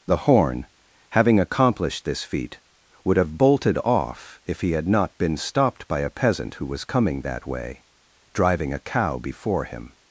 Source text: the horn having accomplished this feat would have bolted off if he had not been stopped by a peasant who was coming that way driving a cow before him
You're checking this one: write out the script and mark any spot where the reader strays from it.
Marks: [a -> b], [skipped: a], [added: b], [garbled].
the horn having accomplished this feat would have bolted off if he had not been stopped by a peasant who was coming that way driving a cow before him